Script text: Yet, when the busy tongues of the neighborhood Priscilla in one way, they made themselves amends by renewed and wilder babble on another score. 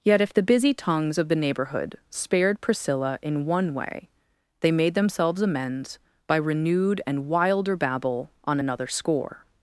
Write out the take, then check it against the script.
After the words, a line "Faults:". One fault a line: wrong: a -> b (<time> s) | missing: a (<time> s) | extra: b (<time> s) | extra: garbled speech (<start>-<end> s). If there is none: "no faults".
Yet, if the busy tongues of the neighborhood spared Priscilla in one way, they made themselves amends by renewed and wilder babble on another score.
Faults:
wrong: when -> if (0.2 s)
extra: spared (2.1 s)